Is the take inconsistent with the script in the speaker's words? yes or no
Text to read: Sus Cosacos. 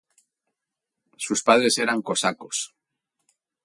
yes